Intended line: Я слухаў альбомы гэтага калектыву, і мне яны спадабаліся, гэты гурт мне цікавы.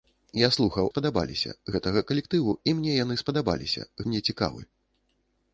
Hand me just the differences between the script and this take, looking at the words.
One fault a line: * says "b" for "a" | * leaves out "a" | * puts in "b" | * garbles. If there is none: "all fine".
* says "спадабаліся" for "альбомы"
* leaves out "гэты гурт"